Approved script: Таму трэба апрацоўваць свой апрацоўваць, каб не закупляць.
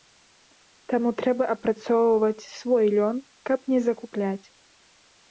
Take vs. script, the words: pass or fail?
fail